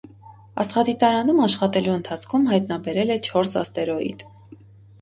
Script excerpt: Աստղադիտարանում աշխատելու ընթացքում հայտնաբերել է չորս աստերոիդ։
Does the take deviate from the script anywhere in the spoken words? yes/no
no